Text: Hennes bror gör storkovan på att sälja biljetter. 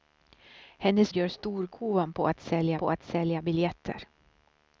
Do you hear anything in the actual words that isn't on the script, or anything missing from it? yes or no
yes